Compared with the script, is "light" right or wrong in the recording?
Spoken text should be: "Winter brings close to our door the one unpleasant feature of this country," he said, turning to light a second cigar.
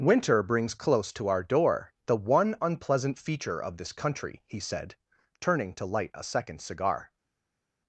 right